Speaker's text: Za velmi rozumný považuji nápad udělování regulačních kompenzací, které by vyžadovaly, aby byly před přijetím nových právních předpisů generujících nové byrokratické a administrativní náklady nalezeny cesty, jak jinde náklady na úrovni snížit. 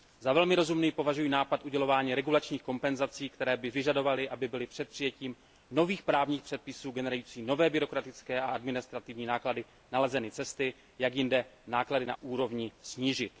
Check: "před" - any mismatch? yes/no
no